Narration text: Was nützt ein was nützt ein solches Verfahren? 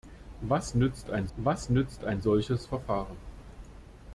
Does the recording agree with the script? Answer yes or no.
yes